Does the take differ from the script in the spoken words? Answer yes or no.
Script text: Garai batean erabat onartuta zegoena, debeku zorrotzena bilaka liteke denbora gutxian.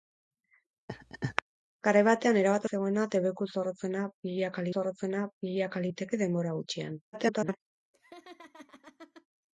yes